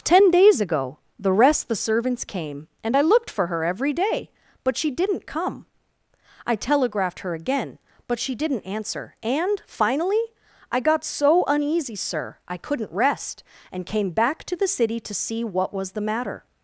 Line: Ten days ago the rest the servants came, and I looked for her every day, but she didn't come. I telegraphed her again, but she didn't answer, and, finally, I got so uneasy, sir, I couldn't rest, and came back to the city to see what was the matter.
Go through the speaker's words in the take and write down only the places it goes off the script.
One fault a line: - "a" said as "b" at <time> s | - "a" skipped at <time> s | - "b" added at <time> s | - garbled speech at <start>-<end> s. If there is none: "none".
none